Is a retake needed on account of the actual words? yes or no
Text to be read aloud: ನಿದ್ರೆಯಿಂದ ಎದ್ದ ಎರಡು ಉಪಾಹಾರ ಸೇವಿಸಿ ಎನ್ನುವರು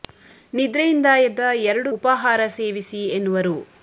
no